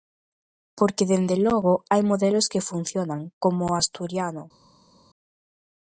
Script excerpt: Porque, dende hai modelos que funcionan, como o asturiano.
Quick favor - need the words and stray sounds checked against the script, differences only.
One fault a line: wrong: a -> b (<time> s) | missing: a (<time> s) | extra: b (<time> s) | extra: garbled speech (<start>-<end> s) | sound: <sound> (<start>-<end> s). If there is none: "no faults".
extra: logo (1.5 s)